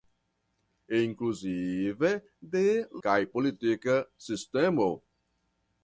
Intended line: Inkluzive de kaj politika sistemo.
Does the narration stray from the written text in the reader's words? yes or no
no